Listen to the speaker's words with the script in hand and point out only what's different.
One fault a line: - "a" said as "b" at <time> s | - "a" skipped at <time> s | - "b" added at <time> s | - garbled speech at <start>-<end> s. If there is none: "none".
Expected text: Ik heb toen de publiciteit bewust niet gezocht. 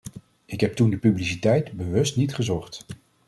none